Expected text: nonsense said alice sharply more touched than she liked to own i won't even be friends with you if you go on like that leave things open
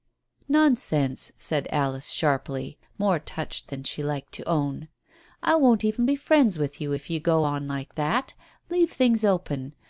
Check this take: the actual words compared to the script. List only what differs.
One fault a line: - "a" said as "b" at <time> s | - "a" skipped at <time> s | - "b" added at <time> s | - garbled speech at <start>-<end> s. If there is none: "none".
none